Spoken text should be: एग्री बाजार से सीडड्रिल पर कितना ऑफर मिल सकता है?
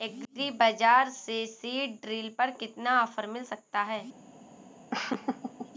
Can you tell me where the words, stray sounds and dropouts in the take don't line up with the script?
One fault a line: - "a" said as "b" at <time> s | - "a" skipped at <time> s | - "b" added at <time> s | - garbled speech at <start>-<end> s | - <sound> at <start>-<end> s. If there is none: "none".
- laugh at 4.9-5.7 s